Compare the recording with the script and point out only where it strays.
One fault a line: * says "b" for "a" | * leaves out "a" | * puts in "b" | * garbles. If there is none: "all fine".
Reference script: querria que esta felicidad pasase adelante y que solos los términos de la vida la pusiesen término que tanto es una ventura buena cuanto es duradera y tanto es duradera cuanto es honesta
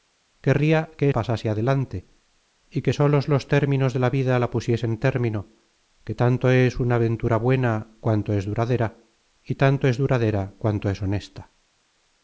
* leaves out "esta felicidad"